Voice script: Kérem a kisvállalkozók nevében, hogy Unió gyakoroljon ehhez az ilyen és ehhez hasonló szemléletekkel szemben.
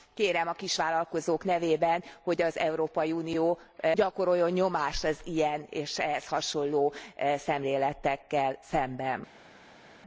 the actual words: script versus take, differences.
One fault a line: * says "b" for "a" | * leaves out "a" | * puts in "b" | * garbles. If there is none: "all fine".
* puts in "az Európai"
* says "nyomást" for "ehhez"